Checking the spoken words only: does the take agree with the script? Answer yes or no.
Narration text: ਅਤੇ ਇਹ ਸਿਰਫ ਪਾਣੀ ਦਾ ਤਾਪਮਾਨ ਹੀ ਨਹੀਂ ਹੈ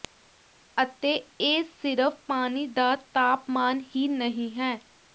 yes